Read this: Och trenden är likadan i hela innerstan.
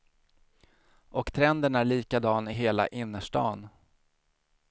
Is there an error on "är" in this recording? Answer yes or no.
no